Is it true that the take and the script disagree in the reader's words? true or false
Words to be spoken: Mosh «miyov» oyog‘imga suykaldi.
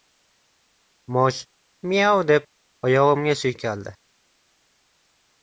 true